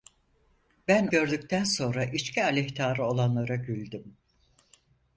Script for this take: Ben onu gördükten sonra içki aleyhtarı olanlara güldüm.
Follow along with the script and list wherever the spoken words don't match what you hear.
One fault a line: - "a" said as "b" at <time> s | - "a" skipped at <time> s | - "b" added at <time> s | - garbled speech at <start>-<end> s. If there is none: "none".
- "onu" skipped at 1.1 s